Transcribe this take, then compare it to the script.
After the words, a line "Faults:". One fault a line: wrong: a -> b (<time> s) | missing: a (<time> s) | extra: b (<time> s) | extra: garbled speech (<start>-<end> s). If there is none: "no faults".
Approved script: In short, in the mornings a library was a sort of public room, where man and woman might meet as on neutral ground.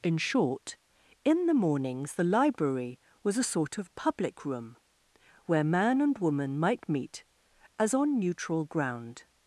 In short, in the mornings the library was a sort of public room, where man and woman might meet as on neutral ground.
Faults:
wrong: a -> the (2.1 s)